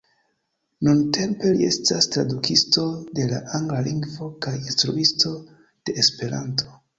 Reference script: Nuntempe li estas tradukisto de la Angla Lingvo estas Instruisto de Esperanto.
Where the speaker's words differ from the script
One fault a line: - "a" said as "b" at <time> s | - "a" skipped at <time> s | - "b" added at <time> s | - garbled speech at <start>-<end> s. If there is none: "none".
- "estas" said as "kaj" at 4.5 s